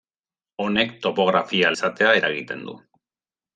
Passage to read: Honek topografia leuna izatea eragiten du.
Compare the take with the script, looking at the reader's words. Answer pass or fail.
fail